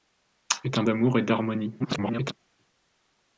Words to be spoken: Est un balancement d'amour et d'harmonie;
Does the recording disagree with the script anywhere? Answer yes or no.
yes